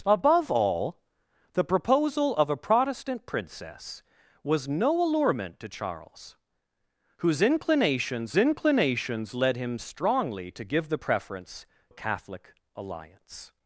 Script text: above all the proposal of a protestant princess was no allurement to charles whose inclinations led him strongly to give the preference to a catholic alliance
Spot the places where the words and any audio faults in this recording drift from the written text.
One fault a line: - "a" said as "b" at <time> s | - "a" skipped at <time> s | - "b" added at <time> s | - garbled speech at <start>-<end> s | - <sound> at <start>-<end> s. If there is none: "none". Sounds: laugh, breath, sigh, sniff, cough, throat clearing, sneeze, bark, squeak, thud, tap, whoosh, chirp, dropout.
- "inclinations" added at 8.4 s
- "to" skipped at 11.7 s